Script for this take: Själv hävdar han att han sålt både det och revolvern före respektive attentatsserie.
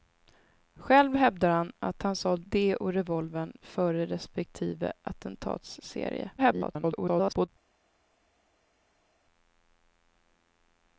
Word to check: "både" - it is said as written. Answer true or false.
false